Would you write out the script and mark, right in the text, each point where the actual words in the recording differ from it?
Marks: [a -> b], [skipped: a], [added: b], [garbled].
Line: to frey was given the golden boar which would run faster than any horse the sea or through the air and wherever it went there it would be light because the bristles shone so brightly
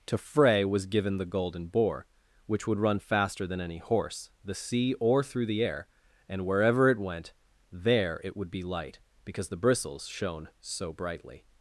to frey was given the golden boar which would run faster than any horse the sea or through the air and wherever it went there it would be light because the bristles shone so brightly